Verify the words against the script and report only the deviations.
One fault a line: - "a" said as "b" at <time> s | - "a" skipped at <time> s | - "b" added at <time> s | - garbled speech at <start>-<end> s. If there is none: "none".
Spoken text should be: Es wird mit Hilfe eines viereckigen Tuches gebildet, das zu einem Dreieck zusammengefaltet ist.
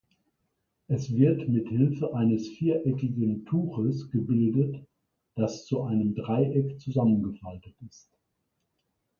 none